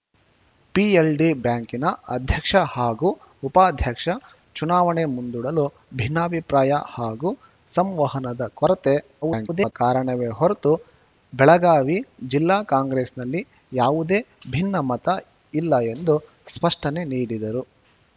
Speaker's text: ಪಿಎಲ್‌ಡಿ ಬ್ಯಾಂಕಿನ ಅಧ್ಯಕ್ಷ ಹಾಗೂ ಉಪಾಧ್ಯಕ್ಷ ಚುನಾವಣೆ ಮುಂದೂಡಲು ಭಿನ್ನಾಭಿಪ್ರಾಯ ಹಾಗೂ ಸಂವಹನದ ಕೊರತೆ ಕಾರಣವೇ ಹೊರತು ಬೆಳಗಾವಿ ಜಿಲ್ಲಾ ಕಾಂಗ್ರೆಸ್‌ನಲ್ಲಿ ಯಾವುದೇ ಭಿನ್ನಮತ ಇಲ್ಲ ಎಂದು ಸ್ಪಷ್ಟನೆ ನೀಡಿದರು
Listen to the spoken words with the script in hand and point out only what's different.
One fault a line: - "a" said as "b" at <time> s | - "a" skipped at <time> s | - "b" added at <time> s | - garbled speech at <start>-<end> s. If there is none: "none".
- garbled speech at 9.2-9.7 s